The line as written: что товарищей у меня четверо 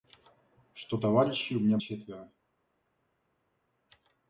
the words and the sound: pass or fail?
pass